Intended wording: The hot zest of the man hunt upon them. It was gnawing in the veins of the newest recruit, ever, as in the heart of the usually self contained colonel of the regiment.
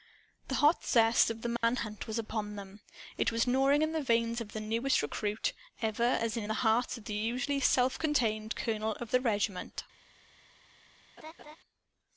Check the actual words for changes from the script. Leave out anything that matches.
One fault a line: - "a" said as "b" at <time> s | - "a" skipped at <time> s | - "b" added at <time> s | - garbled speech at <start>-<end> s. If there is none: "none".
- "was" added at 2.1 s